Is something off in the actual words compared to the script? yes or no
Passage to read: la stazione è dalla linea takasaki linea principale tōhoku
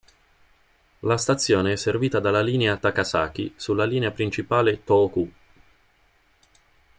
yes